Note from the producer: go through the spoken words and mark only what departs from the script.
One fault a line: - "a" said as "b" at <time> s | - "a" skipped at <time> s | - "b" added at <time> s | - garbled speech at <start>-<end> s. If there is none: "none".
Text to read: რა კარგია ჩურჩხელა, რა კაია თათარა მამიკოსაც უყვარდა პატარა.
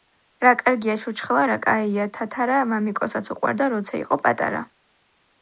- "როცა იყო" added at 3.8 s